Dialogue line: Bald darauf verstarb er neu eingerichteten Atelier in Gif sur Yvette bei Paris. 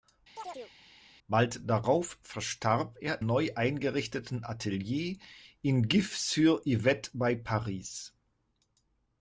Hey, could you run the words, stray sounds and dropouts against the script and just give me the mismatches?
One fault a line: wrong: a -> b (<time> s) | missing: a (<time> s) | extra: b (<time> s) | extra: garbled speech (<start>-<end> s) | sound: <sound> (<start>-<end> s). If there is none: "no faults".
sound: chirp (0.4-0.7 s)